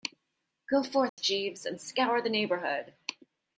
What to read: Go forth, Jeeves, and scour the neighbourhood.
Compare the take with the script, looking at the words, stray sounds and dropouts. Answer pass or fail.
fail